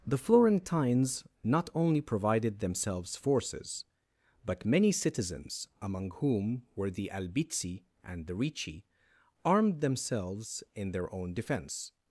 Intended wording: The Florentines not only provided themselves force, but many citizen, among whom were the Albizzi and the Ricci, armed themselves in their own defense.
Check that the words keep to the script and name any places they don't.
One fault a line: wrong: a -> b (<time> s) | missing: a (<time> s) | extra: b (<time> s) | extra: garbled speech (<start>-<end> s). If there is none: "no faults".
wrong: force -> forces (3.1 s)
wrong: citizen -> citizens (4.9 s)